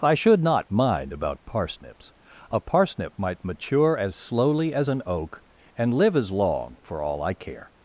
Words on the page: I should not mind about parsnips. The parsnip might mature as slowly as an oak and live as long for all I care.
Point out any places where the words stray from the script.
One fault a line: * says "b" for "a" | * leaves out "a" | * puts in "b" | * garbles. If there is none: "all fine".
* says "A" for "The"